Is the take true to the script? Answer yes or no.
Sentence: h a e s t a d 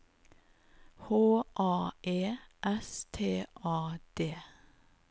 yes